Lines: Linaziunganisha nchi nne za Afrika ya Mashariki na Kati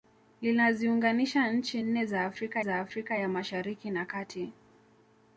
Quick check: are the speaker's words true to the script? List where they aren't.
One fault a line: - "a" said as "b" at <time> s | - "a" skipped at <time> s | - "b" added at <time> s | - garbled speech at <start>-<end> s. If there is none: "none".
- "za Afrika" added at 2.6 s